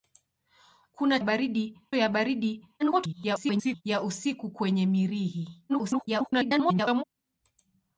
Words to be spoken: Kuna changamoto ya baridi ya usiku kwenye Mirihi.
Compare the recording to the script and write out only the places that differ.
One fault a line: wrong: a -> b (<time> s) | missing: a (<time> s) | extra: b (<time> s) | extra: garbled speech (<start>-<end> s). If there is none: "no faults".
wrong: changamoto -> baridi (1.2 s)
extra: garbled speech (2.8-3.8 s)
extra: garbled speech (5.7-7.0 s)